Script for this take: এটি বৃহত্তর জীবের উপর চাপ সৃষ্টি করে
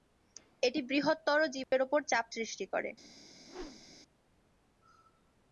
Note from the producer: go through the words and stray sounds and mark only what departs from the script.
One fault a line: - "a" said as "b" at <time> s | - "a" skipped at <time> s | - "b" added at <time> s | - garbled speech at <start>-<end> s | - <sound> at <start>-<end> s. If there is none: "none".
- dropout at 1.6-1.7 s
- whoosh at 3.4-4.0 s